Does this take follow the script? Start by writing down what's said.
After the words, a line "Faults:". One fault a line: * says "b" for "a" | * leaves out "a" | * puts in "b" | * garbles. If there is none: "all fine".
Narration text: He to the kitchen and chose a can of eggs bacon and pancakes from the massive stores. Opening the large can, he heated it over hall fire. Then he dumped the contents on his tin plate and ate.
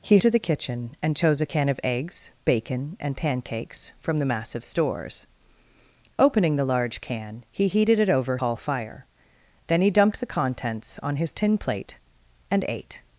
He to the kitchen and chose a can of eggs bacon and pancakes from the massive stores. Opening the large can, he heated it over hall fire. Then he dumped the contents on his tin plate and ate.
Faults:
all fine